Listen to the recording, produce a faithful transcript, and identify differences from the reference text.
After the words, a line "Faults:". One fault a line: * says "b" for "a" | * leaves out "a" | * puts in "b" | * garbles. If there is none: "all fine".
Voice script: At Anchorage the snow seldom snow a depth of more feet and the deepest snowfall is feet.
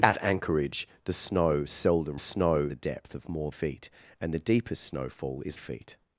At Anchorage the snow seldom snow a depth of more feet and the deepest snowfall is feet.
Faults:
all fine